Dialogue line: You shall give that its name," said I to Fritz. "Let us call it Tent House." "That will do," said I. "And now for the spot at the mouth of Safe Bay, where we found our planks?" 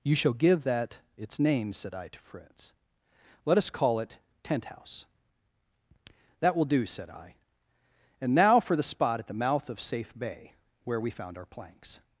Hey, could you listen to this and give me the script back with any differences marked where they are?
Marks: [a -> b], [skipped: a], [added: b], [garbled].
You shall give that its name," said I to Fritz. "Let us call it Tent House." "That will do," said I. "And now for the spot at the mouth of Safe Bay, where we found our planks?"